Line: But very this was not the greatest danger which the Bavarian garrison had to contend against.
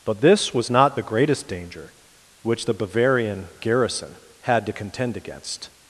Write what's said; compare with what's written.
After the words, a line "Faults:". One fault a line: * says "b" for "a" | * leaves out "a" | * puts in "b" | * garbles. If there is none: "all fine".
But this was not the greatest danger which the Bavarian garrison had to contend against.
Faults:
* leaves out "very"